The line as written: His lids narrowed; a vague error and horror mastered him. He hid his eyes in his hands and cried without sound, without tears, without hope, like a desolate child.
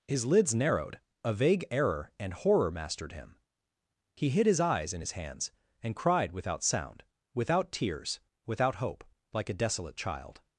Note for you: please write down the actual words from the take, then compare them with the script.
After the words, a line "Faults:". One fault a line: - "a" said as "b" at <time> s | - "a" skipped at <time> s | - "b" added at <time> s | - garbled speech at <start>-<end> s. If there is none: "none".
His lids narrowed; a vague error and horror mastered him. He hid his eyes in his hands and cried without sound, without tears, without hope, like a desolate child.
Faults:
none